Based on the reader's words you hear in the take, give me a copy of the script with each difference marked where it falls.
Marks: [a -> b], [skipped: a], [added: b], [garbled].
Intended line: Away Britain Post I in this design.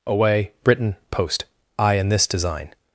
Away Britain Post I in this design.